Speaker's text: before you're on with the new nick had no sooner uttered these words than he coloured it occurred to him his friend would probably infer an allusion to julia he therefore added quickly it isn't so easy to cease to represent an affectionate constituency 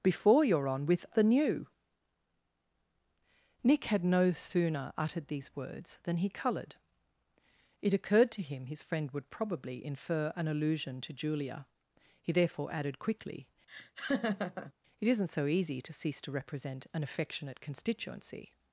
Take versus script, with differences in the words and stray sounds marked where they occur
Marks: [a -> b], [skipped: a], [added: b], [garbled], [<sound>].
before you're on with the new nick had no sooner uttered these words than he coloured it occurred to him his friend would probably infer an allusion to julia he therefore added quickly [laugh] it isn't so easy to cease to represent an affectionate constituency